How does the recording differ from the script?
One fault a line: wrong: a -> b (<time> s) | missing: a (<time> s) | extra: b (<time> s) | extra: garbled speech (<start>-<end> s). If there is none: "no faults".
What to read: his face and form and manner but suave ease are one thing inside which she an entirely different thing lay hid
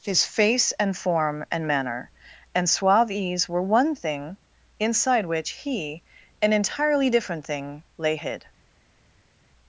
wrong: but -> and (2.5 s)
wrong: are -> were (3.5 s)
wrong: she -> he (5.5 s)